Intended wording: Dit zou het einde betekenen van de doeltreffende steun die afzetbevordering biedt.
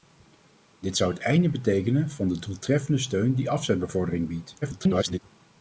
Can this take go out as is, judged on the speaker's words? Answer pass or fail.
fail